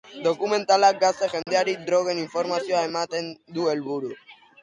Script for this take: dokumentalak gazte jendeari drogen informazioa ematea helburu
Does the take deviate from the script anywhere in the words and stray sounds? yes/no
yes